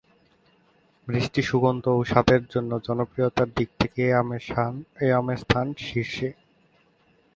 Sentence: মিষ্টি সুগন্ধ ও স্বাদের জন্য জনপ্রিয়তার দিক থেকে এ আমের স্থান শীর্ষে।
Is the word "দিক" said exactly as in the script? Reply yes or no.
yes